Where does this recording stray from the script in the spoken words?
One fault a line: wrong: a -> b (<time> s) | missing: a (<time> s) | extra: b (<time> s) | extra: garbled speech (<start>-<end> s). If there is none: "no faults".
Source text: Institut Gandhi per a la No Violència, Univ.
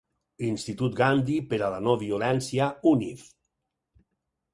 no faults